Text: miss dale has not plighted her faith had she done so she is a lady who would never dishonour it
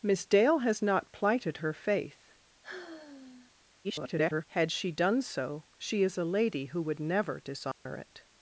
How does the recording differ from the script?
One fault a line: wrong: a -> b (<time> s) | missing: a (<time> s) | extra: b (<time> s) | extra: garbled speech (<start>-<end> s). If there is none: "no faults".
extra: garbled speech (3.8-4.4 s)